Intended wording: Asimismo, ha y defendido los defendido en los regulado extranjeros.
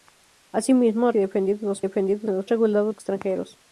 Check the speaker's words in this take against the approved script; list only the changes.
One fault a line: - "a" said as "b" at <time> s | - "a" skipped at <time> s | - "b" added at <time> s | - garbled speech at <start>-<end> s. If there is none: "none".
none